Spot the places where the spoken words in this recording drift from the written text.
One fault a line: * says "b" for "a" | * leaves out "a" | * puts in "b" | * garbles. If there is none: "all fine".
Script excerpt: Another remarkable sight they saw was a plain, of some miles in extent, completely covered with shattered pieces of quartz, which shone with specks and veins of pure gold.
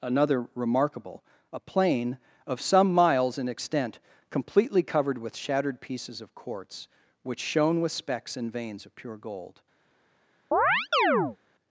* leaves out "sight they saw was"